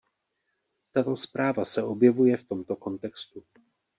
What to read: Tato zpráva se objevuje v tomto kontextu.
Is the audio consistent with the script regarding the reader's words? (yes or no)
yes